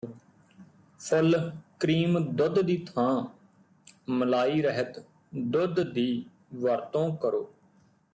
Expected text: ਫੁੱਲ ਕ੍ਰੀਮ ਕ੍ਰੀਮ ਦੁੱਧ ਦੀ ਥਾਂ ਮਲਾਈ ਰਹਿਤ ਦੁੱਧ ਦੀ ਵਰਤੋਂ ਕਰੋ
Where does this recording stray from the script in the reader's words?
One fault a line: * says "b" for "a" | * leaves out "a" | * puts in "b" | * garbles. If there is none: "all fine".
* leaves out "ਕ੍ਰੀਮ"